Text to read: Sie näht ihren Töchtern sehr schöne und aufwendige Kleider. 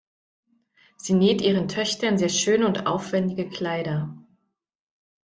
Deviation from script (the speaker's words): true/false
false